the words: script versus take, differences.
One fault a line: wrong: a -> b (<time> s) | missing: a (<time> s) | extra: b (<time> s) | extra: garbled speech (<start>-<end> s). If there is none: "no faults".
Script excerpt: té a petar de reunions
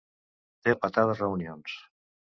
no faults